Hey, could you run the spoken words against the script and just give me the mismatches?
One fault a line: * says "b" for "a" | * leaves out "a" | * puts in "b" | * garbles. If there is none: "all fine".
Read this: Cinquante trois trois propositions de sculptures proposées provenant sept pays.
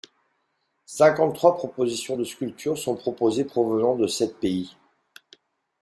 * leaves out "trois"
* puts in "sont"
* puts in "de"